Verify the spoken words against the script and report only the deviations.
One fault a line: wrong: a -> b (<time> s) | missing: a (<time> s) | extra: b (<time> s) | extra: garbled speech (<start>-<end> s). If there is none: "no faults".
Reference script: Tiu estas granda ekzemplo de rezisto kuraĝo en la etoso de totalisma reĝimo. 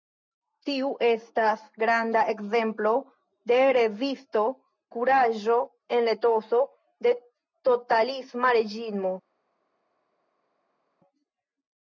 no faults